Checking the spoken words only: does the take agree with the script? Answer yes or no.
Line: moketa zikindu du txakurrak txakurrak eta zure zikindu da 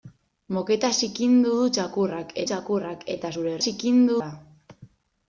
yes